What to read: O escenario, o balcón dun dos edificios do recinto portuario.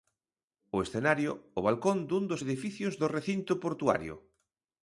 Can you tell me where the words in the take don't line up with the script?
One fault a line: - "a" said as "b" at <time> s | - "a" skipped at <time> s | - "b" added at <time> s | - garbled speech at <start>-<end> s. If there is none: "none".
none